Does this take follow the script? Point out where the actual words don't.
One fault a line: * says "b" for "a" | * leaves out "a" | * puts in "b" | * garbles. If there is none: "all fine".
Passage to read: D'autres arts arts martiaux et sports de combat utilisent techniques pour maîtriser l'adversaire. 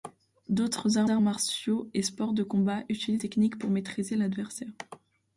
all fine